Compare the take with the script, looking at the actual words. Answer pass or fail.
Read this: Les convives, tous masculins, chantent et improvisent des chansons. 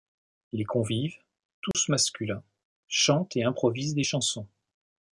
pass